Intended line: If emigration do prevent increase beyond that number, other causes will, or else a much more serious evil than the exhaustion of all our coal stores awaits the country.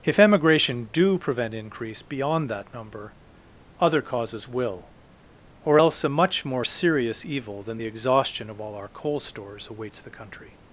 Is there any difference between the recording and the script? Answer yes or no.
no